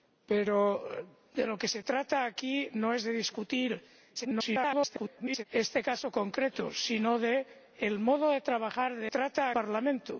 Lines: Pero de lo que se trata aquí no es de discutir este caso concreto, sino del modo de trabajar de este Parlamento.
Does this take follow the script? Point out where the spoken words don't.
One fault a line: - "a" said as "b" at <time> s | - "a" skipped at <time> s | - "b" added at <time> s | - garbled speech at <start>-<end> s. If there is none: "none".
- garbled speech at 4.2-5.4 s
- "este" said as "trata" at 9.1 s